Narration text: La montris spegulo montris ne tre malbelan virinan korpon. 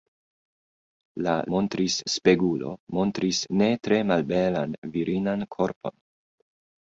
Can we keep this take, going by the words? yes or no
yes